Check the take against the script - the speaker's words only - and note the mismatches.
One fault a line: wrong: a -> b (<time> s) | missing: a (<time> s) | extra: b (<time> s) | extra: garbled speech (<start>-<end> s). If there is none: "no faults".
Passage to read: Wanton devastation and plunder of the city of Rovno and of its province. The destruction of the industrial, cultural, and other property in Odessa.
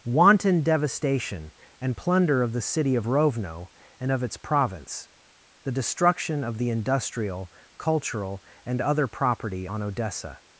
wrong: in -> on (9.6 s)